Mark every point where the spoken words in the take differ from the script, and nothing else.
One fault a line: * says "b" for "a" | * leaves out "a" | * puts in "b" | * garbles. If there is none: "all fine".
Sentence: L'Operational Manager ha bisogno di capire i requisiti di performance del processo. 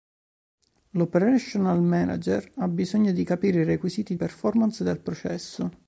* leaves out "di"